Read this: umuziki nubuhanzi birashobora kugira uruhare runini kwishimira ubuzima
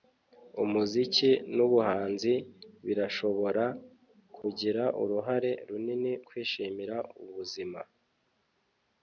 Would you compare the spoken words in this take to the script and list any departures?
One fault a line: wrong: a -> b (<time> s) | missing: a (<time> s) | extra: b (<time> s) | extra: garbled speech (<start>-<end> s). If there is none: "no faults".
no faults